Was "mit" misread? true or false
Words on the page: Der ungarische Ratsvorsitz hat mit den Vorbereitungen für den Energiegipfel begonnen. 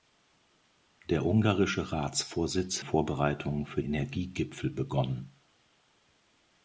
true